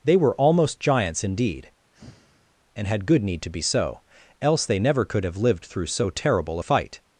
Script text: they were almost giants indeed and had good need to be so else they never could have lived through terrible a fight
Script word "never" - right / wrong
right